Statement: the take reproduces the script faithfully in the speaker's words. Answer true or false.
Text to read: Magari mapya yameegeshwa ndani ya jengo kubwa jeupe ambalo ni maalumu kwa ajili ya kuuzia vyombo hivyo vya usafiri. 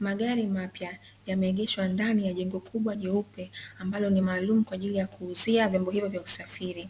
true